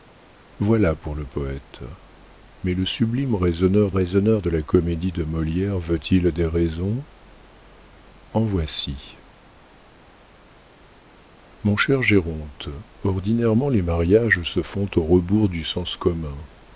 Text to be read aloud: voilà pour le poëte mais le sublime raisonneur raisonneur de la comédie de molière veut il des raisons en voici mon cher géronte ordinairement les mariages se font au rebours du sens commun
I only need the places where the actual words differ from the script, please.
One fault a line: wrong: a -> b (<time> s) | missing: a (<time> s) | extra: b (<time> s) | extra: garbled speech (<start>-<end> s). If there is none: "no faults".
no faults